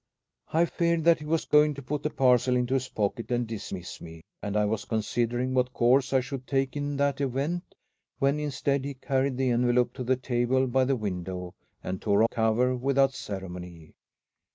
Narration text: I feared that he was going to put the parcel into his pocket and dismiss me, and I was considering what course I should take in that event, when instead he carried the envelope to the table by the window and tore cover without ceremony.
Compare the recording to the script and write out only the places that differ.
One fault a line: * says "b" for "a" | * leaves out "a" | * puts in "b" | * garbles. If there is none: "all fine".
all fine